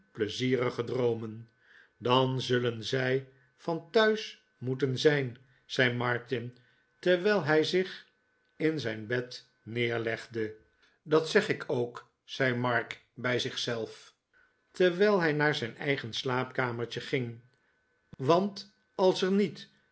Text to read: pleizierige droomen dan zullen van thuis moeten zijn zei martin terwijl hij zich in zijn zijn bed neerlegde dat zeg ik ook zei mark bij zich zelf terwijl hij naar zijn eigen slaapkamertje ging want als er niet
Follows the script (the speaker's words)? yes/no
no